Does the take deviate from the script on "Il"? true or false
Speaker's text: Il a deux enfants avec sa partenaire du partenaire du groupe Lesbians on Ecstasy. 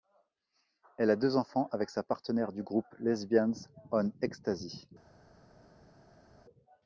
true